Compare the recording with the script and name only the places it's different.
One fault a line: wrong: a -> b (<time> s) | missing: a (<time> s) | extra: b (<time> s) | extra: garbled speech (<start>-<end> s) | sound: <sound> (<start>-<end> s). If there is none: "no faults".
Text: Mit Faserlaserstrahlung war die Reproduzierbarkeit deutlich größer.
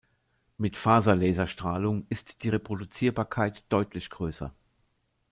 wrong: war -> ist (2.1 s)